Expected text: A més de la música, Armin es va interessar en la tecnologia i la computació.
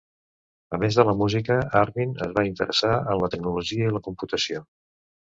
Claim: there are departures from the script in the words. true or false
false